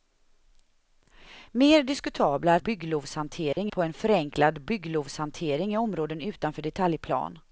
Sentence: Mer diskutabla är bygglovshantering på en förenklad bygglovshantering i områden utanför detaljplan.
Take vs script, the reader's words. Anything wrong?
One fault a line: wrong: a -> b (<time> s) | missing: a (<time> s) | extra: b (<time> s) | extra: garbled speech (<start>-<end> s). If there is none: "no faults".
no faults